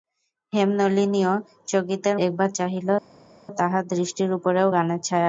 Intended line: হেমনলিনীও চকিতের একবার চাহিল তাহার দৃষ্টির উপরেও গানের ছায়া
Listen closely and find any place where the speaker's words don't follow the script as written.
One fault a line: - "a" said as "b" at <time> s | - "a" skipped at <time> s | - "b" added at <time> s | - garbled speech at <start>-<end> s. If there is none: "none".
none